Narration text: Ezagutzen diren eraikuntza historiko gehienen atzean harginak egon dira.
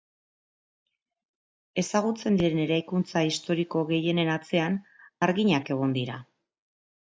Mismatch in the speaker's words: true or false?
false